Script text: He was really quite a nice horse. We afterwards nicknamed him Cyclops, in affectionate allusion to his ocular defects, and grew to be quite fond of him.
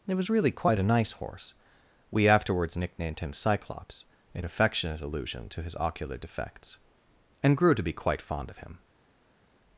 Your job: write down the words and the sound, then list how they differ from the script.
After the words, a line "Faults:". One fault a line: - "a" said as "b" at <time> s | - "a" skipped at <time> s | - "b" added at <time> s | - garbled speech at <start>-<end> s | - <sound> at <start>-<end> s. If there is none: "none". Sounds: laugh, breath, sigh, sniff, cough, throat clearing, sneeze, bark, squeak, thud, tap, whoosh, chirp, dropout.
It was really quite a nice horse. We afterwards nicknamed him Cyclops, in affectionate allusion to his ocular defects, and grew to be quite fond of him.
Faults:
- "He" said as "It" at 0.1 s